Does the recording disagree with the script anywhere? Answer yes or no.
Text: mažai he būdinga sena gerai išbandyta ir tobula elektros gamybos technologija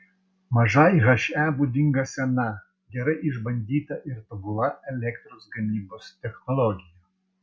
no